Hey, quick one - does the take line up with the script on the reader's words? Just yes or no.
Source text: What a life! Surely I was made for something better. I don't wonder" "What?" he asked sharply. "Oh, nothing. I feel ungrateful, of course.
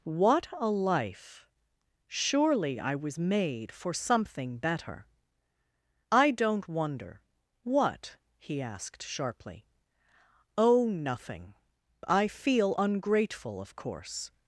yes